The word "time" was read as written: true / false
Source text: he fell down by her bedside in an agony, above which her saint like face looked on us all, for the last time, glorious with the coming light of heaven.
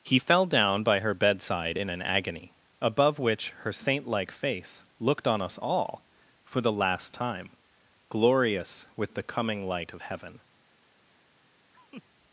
true